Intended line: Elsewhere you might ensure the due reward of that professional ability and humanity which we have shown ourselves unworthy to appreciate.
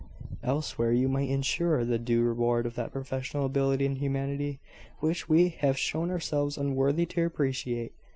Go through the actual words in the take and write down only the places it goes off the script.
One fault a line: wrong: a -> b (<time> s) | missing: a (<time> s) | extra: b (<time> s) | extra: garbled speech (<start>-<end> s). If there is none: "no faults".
no faults